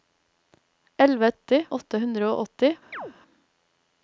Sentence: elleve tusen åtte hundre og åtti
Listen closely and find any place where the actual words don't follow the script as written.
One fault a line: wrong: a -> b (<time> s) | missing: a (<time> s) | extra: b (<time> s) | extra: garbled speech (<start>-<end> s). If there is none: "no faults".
wrong: tusen -> åtti (1.3 s)